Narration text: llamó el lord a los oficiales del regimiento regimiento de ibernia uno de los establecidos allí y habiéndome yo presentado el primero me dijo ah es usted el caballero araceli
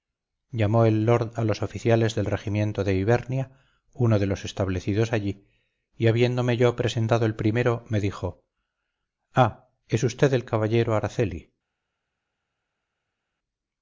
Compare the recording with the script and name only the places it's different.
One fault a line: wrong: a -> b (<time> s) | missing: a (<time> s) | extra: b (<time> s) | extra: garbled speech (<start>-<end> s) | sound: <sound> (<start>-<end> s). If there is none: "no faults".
missing: regimiento (2.8 s)